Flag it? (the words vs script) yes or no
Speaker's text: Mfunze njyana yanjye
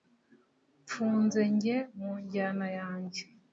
yes